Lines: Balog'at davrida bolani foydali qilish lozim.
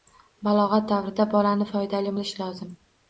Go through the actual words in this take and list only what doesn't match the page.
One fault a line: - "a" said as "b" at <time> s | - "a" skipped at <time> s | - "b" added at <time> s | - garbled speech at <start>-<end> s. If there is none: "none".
none